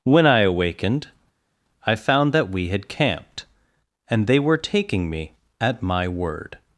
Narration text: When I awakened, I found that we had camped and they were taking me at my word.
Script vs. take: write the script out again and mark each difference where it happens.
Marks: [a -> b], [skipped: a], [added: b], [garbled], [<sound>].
When I awakened, I found that we had camped and they were taking me at my word.